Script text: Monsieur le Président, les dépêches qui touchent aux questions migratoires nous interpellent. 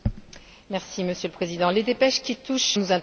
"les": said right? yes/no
yes